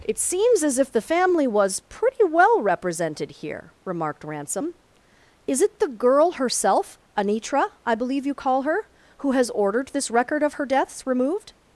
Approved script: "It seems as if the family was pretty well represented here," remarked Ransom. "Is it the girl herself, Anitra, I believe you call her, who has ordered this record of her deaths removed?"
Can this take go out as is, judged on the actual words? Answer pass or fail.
pass